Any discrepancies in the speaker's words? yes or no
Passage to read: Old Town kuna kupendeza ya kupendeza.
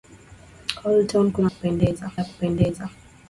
no